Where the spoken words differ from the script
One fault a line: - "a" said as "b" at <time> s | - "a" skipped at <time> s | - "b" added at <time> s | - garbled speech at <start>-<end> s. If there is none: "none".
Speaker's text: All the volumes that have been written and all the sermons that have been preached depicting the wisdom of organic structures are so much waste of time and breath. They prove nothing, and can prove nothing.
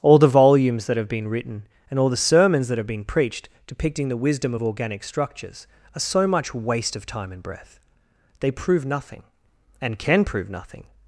none